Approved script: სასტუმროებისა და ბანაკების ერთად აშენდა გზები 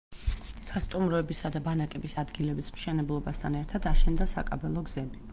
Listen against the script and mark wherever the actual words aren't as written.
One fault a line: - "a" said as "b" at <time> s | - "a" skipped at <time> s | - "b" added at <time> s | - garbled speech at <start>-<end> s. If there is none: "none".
- "ადგილების მშენებლობასთან" added at 2.2 s
- "საკაბელო" added at 4.3 s